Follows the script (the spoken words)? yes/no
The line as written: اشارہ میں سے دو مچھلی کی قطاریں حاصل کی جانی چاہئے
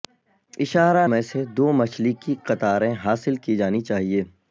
yes